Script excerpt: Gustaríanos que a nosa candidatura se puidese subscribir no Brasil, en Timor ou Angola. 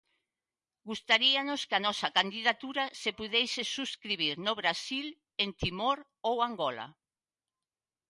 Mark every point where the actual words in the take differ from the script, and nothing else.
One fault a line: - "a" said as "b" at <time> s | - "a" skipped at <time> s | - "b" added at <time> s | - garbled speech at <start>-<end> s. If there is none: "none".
none